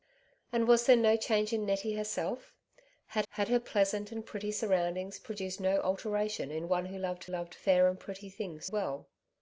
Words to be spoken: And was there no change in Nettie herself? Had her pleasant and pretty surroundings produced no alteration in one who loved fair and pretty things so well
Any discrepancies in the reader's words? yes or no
yes